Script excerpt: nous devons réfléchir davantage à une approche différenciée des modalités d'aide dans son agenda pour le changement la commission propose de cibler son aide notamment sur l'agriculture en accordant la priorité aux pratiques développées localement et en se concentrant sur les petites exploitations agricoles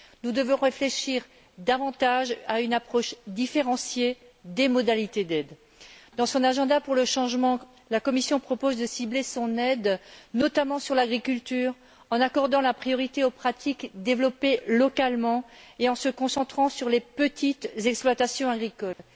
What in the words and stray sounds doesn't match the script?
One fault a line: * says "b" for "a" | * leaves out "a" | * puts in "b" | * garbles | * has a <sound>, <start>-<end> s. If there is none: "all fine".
* has a dropout, 18.9-19.0 s